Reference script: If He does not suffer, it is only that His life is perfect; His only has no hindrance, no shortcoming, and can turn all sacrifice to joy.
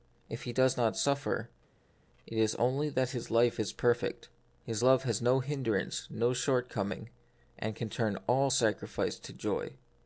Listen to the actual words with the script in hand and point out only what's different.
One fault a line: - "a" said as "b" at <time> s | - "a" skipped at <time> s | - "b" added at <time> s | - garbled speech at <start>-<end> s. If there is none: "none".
- "only" said as "love" at 4.8 s